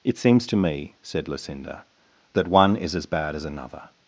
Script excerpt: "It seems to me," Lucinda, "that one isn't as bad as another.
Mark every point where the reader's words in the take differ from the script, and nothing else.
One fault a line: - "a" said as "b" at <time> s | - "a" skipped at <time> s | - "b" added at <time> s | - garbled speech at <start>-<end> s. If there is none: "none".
- "said" added at 1.0 s
- "isn't" said as "is" at 2.8 s